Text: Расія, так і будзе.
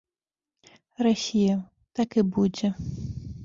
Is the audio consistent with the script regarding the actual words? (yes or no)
yes